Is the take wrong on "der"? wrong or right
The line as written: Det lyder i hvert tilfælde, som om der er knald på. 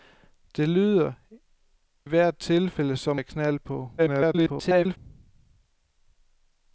wrong